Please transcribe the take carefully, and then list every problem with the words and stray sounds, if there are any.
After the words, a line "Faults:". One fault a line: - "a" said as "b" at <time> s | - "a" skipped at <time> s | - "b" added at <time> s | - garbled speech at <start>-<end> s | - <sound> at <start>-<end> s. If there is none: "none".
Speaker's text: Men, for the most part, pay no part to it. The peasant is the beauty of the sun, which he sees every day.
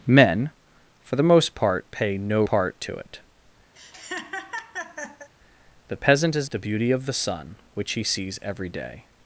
Men, for the most part, pay no part to it. The peasant is the beauty of the sun, which he sees every day.
Faults:
- laugh at 3.7-5.3 s